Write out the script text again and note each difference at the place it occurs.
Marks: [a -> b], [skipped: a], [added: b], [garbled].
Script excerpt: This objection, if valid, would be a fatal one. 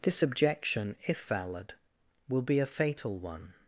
This objection, if valid, [would -> will] be a fatal one.